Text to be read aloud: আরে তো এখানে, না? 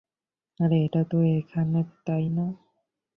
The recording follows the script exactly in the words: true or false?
false